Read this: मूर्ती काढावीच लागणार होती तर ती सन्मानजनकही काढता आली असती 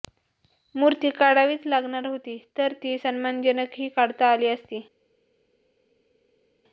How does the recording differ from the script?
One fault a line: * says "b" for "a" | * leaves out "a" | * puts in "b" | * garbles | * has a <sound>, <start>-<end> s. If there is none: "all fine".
all fine